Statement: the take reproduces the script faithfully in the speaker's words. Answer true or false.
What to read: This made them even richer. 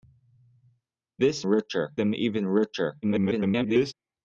false